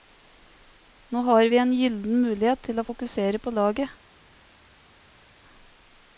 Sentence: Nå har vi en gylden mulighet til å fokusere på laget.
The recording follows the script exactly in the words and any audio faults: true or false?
true